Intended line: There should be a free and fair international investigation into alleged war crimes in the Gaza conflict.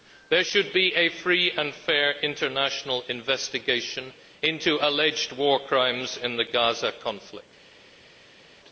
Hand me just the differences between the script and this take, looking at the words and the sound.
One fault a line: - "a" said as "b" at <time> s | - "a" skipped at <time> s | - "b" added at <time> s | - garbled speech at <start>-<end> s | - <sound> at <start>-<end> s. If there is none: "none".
none